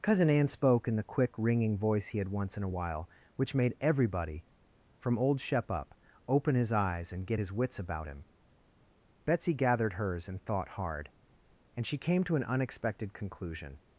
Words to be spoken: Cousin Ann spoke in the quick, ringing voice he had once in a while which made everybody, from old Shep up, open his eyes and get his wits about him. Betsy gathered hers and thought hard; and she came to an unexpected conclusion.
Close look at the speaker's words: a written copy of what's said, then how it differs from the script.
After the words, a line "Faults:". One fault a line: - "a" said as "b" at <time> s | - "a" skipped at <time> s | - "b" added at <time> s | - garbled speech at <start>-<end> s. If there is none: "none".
Cousin Ann spoke in the quick, ringing voice he had once in a while which made everybody, from old Shep up, open his eyes and get his wits about him. Betsy gathered hers and thought hard; and she came to an unexpected conclusion.
Faults:
none